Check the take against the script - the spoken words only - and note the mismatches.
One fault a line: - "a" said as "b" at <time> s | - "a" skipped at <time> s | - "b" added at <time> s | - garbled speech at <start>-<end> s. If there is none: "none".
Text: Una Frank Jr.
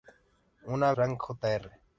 none